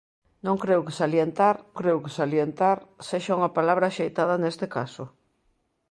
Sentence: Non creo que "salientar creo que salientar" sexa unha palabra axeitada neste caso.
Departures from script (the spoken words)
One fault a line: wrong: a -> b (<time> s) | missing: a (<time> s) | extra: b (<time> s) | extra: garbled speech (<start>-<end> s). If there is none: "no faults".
no faults